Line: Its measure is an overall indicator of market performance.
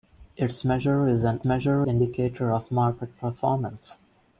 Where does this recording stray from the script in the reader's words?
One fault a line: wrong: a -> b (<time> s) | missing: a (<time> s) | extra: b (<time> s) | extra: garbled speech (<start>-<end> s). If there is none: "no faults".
wrong: overall -> measure (1.5 s)